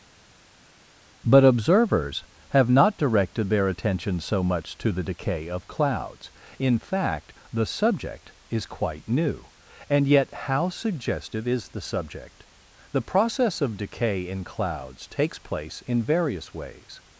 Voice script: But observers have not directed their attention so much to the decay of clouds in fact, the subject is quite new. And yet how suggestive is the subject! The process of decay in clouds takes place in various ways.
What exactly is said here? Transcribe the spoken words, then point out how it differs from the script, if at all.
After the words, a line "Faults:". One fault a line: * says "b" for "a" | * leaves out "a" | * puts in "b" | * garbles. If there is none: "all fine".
But observers have not directed their attention so much to the decay of clouds in fact, the subject is quite new. And yet how suggestive is the subject! The process of decay in clouds takes place in various ways.
Faults:
all fine